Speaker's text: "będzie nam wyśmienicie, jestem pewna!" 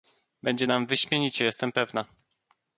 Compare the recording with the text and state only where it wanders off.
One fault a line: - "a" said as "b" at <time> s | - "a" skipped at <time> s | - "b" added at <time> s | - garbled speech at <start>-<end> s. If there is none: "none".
none